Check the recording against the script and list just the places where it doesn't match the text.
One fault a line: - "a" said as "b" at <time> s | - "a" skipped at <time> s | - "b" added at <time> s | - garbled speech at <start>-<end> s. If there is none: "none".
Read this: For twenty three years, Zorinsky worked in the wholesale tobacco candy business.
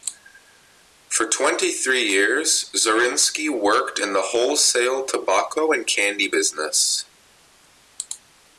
- "and" added at 5.7 s